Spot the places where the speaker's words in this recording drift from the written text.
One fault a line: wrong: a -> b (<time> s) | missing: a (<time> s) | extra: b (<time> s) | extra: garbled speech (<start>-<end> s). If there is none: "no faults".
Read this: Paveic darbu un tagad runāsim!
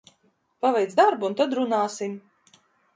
wrong: tagad -> tad (1.4 s)